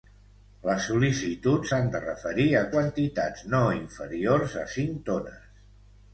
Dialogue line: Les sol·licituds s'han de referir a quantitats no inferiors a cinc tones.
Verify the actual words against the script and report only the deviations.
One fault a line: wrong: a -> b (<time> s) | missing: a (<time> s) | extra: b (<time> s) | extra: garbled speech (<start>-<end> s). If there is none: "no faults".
no faults